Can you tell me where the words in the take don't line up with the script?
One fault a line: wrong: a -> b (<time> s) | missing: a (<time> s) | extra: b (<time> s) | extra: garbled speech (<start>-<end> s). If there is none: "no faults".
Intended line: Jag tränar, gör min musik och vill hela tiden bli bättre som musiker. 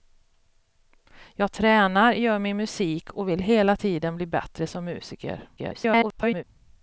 extra: garbled speech (5.6-6.4 s)